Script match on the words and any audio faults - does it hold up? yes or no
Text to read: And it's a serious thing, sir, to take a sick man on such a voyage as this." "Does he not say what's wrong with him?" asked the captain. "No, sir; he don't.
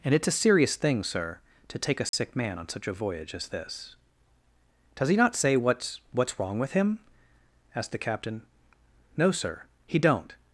no